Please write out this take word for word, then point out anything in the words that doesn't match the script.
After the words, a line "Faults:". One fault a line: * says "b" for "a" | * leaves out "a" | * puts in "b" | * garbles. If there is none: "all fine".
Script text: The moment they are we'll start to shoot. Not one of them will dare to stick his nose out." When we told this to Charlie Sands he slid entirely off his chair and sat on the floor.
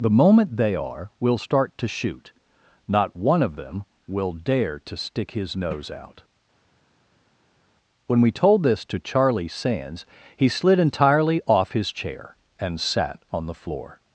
The moment they are we'll start to shoot. Not one of them will dare to stick his nose out." When we told this to Charlie Sands he slid entirely off his chair and sat on the floor.
Faults:
all fine